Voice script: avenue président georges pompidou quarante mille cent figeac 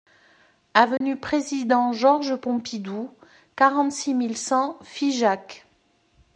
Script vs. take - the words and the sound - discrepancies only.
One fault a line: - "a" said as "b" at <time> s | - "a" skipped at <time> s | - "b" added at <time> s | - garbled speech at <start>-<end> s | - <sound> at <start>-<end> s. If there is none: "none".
- dropout at 1.0-1.0 s
- "six" added at 3.9 s